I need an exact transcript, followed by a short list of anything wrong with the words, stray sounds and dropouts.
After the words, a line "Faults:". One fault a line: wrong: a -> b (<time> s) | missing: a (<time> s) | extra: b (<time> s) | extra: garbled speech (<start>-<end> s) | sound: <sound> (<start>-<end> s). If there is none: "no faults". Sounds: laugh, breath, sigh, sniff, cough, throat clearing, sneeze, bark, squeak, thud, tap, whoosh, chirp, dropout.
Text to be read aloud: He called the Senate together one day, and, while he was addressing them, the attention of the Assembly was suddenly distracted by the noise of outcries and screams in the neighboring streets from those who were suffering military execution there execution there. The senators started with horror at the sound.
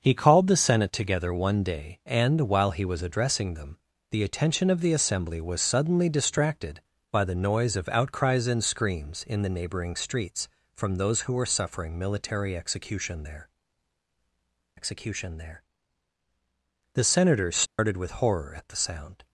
He called the Senate together one day, and, while he was addressing them, the attention of the Assembly was suddenly distracted by the noise of outcries and screams in the neighboring streets from those who were suffering military execution there execution there. The senators started with horror at the sound.
Faults:
sound: dropout (17.7-17.8 s)